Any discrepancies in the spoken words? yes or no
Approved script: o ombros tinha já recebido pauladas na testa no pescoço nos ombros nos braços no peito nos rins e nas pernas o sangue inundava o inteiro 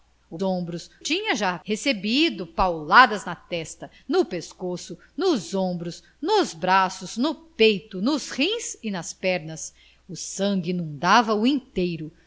no